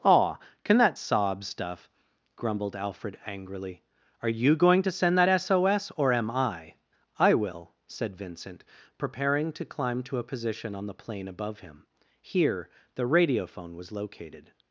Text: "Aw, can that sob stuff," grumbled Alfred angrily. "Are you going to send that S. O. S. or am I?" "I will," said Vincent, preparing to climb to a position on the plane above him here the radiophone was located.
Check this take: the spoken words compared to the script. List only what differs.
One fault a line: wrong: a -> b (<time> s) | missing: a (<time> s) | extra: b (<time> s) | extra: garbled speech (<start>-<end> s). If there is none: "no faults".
no faults